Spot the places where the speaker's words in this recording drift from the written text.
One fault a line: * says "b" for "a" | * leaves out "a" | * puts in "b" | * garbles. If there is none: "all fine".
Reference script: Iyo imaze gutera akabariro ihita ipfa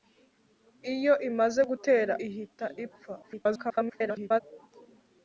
* leaves out "akabariro"
* garbles